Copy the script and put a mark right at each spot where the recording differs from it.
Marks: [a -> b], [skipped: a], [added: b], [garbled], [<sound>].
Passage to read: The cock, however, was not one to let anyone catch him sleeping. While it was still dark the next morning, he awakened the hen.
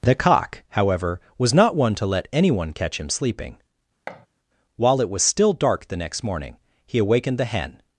The cock, however, was not one to let anyone catch him sleeping. [thud] While it was still dark the next morning, he awakened the hen.